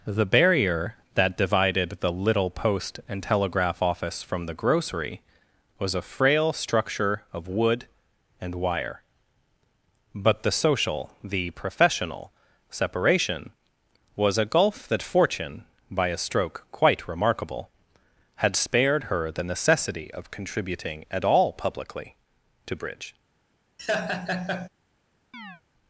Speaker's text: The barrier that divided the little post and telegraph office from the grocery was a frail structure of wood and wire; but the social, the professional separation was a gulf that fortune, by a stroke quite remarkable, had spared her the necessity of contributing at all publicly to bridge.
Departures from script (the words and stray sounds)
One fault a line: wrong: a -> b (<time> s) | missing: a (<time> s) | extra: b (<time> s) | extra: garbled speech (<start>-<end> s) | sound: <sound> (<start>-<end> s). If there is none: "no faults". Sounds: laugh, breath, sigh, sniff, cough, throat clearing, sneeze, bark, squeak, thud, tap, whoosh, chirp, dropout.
sound: laugh (23.8-24.7 s)
sound: chirp (25.3-25.6 s)